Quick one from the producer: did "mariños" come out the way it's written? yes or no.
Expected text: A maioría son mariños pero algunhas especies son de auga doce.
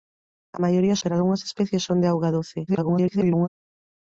no